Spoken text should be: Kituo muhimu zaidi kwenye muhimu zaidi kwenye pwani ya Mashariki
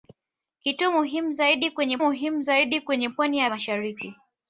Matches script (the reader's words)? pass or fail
pass